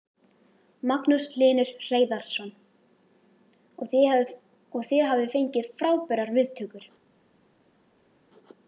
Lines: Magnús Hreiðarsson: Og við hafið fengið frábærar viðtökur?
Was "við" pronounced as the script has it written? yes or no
no